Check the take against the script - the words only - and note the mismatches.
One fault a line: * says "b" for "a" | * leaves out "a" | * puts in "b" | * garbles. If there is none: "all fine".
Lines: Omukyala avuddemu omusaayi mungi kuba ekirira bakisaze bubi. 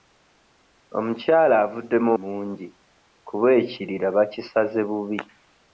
* leaves out "omusaayi"